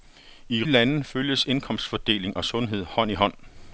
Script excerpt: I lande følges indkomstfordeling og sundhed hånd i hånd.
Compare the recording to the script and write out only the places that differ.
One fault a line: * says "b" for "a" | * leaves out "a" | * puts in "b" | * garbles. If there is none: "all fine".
all fine